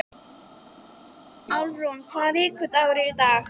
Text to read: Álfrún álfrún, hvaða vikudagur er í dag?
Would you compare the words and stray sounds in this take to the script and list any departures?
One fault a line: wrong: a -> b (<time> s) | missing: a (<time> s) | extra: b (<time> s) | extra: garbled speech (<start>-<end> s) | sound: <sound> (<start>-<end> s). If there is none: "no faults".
missing: álfrún (2.0 s)